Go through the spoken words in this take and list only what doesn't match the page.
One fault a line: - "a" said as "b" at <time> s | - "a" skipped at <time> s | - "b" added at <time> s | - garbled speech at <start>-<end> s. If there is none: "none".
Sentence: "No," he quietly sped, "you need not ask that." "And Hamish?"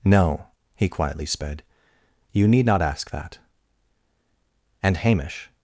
none